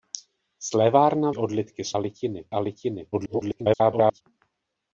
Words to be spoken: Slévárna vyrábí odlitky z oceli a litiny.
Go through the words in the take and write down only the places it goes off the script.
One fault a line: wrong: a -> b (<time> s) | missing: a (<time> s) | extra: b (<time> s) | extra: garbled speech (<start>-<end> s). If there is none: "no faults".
missing: vyrábí (1.3 s)
wrong: oceli -> litiny (2.0 s)
extra: garbled speech (3.1-4.2 s)